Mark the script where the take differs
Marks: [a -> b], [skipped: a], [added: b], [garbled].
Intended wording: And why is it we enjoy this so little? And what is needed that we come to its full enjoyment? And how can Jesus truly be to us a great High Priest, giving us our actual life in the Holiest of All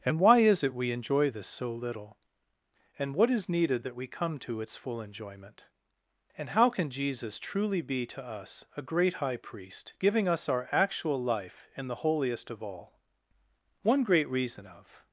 And why is it we enjoy this so little? And what is needed that we come to its full enjoyment? And how can Jesus truly be to us a great High Priest, giving us our actual life in the Holiest of All [added: One great reason of]